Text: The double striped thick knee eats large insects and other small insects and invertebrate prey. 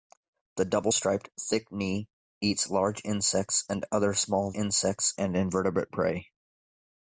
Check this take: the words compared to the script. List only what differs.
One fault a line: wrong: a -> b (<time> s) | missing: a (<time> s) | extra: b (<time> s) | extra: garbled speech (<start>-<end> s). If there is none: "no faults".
no faults